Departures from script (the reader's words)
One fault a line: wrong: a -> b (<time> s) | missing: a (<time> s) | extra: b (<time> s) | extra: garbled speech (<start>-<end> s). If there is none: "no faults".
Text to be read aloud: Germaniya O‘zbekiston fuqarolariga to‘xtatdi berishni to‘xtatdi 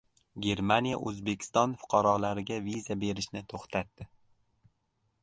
wrong: to‘xtatdi -> viza (2.7 s)